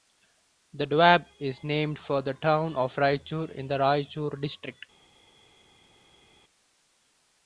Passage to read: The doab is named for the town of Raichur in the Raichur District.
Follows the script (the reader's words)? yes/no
yes